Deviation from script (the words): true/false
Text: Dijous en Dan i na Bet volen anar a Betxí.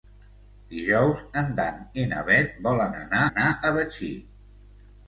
true